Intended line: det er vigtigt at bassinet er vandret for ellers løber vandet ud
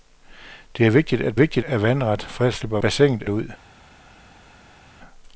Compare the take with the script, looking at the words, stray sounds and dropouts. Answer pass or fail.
fail